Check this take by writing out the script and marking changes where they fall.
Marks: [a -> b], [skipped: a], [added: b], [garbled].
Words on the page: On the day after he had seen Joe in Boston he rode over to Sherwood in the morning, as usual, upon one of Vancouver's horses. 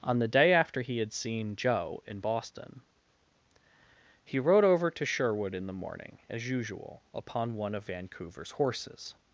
On the day after he had seen Joe in Boston he rode over to Sherwood in the morning, as usual, upon one of Vancouver's horses.